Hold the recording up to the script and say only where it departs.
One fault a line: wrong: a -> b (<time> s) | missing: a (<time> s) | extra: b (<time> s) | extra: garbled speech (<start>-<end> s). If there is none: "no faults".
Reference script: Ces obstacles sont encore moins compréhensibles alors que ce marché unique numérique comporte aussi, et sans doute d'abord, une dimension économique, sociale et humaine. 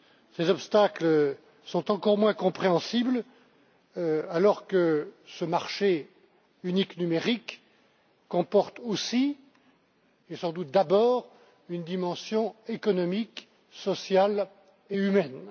no faults